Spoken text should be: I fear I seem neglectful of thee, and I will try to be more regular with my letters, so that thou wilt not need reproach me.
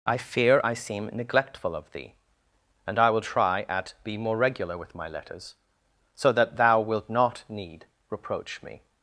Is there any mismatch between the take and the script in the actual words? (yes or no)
yes